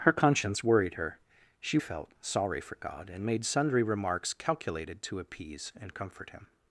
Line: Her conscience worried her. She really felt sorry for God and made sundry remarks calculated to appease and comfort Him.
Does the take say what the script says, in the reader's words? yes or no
no